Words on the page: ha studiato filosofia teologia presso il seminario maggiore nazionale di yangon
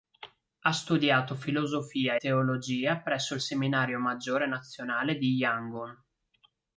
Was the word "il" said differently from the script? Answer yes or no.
no